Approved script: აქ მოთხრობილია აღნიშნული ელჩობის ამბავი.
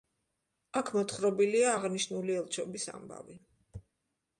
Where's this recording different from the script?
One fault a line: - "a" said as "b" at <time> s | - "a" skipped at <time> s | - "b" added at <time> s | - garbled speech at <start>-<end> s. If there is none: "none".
none